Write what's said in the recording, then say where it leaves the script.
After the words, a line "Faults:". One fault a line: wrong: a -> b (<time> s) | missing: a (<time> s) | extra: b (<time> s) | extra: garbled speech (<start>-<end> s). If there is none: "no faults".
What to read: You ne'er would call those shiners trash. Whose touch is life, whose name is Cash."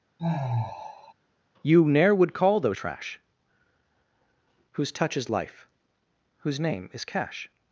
You ne'er would call those trash. Whose touch is life, whose name is Cash."
Faults:
missing: shiners (2.8 s)